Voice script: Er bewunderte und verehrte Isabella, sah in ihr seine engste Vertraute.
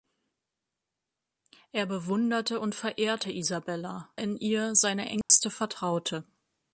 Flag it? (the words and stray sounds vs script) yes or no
yes